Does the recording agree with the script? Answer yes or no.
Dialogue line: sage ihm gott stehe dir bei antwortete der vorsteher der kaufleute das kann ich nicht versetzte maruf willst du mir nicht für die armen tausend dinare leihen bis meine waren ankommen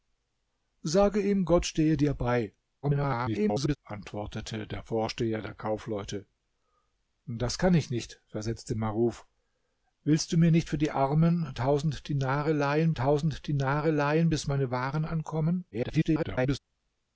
no